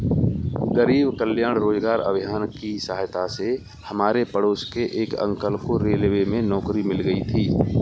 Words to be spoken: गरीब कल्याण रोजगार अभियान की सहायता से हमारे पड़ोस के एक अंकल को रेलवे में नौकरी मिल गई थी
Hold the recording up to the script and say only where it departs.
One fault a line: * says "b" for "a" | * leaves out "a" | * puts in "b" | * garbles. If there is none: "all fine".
all fine